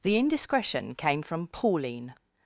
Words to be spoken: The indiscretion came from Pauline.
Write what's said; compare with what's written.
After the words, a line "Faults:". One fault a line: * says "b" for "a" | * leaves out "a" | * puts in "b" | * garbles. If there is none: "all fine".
The indiscretion came from Pauline.
Faults:
all fine